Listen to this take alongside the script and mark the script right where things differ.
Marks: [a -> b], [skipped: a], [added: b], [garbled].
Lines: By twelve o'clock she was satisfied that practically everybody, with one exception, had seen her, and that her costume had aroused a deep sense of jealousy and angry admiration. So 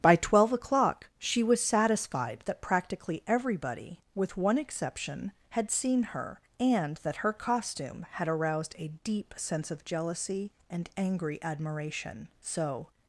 By twelve o'clock she was satisfied that practically everybody, with one exception, had seen her, and that her costume had aroused a deep sense of jealousy and angry admiration. So